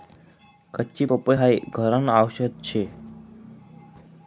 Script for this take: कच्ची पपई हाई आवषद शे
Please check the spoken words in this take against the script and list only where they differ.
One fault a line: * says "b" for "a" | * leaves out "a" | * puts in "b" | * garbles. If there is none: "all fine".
* puts in "घरन"